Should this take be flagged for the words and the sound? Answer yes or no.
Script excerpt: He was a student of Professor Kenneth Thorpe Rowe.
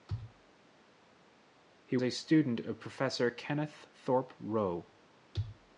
yes